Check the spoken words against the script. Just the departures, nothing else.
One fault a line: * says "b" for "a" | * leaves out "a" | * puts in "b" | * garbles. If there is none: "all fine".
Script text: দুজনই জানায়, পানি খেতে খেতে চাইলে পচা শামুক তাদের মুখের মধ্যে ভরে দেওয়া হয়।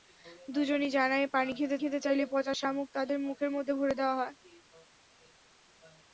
all fine